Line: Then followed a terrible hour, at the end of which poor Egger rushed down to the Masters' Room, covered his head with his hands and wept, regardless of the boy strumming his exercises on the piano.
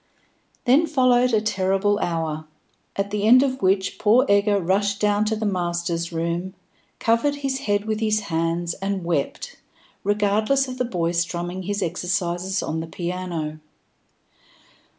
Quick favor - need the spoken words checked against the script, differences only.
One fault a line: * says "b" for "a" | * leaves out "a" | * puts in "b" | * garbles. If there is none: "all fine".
all fine